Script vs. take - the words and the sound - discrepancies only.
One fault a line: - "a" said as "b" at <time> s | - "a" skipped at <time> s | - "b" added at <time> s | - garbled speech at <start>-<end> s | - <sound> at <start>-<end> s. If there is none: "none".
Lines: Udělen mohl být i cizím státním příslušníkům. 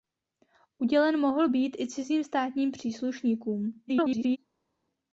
- garbled speech at 3.9-4.4 s